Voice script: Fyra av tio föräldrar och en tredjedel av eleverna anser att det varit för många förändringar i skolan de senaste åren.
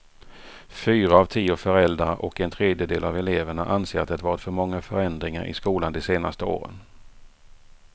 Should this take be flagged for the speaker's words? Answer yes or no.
no